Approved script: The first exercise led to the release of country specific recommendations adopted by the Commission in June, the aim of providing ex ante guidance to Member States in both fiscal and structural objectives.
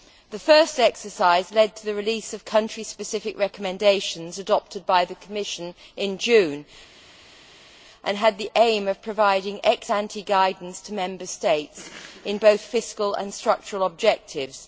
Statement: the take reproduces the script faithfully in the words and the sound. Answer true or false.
false